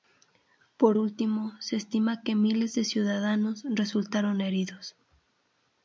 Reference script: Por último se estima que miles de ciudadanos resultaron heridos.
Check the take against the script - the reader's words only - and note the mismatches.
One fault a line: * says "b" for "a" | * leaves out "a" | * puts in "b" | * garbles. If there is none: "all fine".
all fine